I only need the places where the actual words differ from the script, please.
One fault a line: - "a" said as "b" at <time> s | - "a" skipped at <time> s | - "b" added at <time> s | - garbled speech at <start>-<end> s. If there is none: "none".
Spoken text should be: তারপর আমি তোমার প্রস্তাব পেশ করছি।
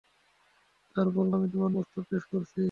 none